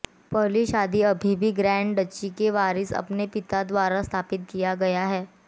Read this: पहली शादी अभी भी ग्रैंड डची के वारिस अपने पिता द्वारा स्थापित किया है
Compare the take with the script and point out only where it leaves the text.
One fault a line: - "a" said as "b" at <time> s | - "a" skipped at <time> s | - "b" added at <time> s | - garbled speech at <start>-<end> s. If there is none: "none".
- "गया" added at 4.8 s